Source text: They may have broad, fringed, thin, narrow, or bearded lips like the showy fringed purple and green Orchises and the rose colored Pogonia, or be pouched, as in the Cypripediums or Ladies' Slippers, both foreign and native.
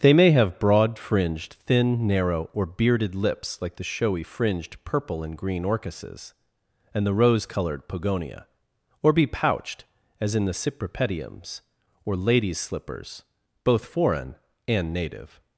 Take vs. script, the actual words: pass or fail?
pass